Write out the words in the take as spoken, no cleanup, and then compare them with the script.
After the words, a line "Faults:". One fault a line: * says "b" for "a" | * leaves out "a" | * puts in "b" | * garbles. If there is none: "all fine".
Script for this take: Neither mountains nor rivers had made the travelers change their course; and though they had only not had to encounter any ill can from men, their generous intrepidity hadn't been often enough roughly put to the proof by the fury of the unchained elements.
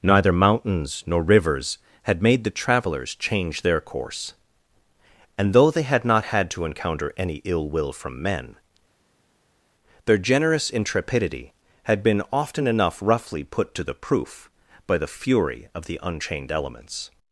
Neither mountains nor rivers had made the travelers change their course; and though they had not had to encounter any ill will from men, their generous intrepidity had been often enough roughly put to the proof by the fury of the unchained elements.
Faults:
* leaves out "only"
* says "will" for "can"
* says "had" for "hadn't"